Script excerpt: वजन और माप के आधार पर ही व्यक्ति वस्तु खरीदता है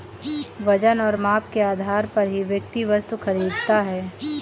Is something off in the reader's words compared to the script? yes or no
no